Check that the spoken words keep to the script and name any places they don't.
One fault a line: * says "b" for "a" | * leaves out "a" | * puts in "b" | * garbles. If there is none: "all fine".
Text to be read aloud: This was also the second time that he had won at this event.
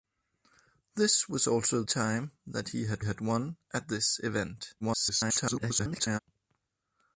* leaves out "the second"
* puts in "had"
* garbles